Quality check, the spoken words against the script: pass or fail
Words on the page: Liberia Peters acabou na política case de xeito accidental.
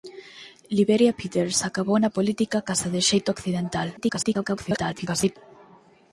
fail